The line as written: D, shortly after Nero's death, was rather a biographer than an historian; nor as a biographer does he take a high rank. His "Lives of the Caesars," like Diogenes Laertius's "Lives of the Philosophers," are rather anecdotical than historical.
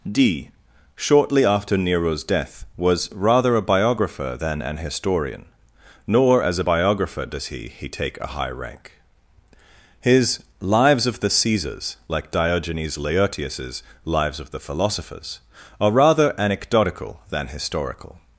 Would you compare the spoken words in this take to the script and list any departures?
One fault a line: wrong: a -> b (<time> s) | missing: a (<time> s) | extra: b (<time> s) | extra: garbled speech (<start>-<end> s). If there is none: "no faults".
extra: he (7.7 s)